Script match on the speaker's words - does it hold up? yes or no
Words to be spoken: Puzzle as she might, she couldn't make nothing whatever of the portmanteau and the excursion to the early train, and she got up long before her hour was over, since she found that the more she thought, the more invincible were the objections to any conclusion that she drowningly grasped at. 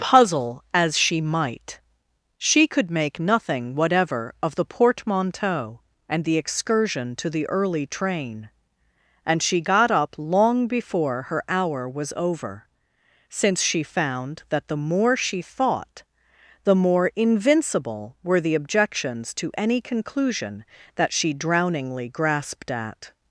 no